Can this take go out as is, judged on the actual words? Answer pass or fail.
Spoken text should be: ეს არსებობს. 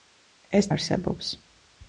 pass